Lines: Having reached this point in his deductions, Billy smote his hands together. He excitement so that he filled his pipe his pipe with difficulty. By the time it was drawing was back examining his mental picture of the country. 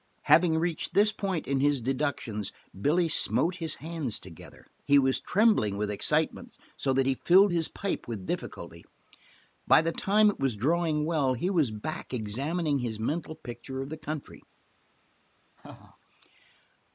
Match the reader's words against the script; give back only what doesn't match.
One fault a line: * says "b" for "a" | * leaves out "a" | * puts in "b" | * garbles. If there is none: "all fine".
* puts in "was trembling with"
* leaves out "his pipe"
* puts in "well he"